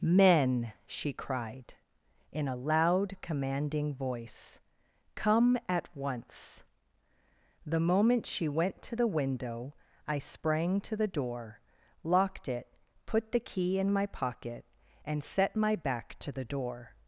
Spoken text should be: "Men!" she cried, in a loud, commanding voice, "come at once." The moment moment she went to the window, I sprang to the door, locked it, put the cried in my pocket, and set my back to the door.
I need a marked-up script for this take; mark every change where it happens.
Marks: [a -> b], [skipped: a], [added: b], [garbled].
"Men!" she cried, in a loud, commanding voice, "come at once." The moment [skipped: moment] she went to the window, I sprang to the door, locked it, put the [cried -> key] in my pocket, and set my back to the door.